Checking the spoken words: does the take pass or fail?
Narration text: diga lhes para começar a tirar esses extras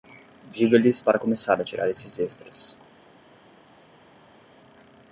pass